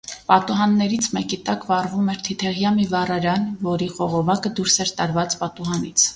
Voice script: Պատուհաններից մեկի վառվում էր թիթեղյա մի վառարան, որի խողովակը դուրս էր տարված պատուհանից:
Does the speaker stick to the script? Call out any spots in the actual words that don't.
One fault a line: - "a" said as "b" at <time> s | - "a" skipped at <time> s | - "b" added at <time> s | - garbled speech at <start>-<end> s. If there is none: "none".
- "տակ" added at 1.5 s